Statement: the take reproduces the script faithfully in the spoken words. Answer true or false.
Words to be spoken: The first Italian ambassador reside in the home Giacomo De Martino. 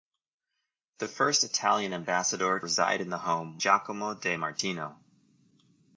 true